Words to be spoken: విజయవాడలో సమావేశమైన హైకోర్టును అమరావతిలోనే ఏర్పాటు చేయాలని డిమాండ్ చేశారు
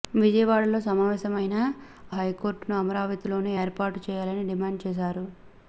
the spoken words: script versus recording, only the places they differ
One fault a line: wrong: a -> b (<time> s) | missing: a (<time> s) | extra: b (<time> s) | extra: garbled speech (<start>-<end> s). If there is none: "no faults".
no faults